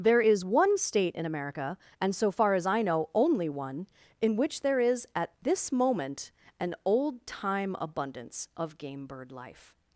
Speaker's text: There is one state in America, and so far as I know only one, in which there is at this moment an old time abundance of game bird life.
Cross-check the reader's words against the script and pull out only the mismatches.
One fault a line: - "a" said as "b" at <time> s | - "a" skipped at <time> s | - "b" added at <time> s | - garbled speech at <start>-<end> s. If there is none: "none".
none